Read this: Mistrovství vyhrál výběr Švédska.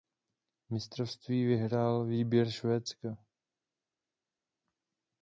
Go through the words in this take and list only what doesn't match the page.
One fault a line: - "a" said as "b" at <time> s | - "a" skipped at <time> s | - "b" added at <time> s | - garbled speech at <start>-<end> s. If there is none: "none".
none